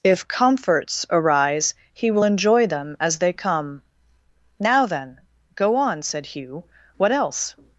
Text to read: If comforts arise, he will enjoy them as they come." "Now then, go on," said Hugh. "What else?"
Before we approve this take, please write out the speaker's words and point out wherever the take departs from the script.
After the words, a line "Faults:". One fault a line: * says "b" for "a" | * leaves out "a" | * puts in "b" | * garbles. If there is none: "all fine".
If comforts arise, he will enjoy them as they come." "Now then, go on," said Hugh. "What else?"
Faults:
all fine